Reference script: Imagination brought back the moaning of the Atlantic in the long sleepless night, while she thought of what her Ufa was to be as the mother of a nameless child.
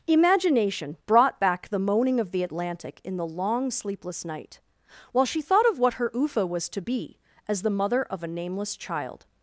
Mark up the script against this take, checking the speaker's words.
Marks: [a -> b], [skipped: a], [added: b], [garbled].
Imagination brought back the moaning of the Atlantic in the long sleepless night, while she thought of what her Ufa was to be as the mother of a nameless child.